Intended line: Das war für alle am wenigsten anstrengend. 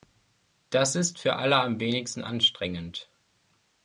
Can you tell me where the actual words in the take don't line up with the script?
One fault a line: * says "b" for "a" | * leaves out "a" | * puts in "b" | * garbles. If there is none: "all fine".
* says "ist" for "war"